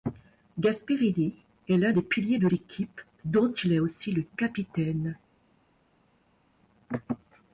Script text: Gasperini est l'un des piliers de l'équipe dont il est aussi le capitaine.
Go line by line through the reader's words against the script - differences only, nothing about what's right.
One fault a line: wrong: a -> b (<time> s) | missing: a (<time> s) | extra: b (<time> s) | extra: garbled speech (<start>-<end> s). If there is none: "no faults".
no faults